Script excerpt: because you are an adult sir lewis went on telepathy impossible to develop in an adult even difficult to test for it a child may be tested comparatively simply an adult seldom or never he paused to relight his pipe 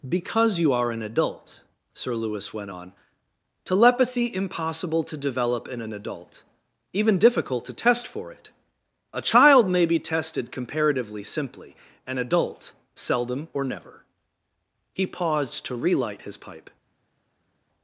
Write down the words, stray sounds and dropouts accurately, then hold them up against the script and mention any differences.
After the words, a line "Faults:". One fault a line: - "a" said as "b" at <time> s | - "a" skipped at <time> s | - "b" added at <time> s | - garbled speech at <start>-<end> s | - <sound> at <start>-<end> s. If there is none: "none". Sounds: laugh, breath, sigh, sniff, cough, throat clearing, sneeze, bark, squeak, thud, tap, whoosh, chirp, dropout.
because you are an adult sir lewis went on telepathy impossible to develop in an adult even difficult to test for it a child may be tested comparatively simply an adult seldom or never he paused to relight his pipe
Faults:
none